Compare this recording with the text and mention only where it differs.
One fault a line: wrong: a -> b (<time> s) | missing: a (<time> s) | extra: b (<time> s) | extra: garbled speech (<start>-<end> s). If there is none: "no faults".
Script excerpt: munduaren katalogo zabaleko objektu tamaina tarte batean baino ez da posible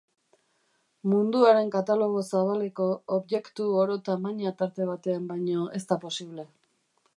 extra: oro (3.8 s)